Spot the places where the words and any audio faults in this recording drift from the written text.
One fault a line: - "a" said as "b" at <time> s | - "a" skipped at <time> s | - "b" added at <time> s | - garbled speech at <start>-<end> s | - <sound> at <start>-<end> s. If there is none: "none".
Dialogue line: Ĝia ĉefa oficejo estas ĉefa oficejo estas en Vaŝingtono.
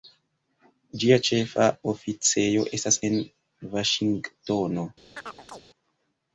- "ĉefa oficejo estas" skipped at 3.0 s
- chirp at 5.2-5.6 s